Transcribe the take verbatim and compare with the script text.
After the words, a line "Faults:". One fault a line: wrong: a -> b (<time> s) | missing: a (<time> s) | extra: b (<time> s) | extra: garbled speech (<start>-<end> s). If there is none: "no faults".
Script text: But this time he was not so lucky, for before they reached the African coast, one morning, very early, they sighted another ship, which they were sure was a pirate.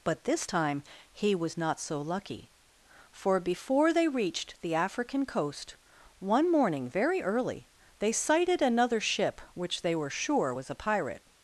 But this time he was not so lucky, for before they reached the African coast, one morning, very early, they sighted another ship, which they were sure was a pirate.
Faults:
no faults